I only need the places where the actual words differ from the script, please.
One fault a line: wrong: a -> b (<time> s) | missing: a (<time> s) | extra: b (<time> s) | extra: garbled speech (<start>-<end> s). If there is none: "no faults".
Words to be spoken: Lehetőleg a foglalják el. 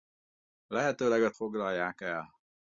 no faults